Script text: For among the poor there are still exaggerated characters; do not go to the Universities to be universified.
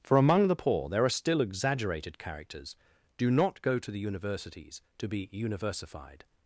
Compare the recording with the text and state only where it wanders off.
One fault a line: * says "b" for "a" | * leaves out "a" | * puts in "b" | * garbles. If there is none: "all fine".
all fine